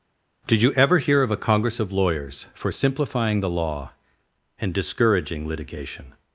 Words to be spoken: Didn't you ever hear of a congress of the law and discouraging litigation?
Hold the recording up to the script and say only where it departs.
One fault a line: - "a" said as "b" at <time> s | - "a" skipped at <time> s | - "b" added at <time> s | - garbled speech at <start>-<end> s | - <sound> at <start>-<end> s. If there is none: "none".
- "Didn't" said as "Did" at 0.5 s
- "lawyers for simplifying" added at 1.9 s